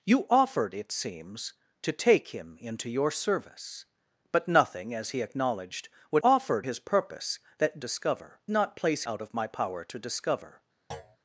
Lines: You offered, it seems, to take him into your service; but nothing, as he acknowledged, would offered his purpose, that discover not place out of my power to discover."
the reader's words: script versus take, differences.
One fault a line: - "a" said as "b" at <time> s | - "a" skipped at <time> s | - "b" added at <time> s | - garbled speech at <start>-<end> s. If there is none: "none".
none